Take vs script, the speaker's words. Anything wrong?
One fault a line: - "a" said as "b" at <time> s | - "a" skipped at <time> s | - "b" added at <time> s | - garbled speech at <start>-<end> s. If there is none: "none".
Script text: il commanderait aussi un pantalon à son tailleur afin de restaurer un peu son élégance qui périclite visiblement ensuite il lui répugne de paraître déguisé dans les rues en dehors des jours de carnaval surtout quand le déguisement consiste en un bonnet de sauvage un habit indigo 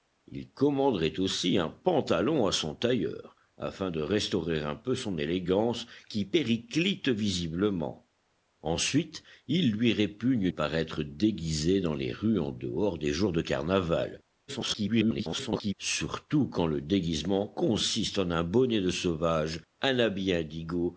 - "de" skipped at 10.5 s
- garbled speech at 14.5-15.7 s